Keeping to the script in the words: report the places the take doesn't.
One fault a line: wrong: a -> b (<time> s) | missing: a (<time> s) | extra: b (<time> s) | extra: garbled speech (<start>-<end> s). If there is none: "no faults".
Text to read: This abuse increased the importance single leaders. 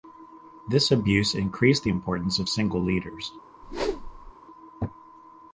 extra: of (2.4 s)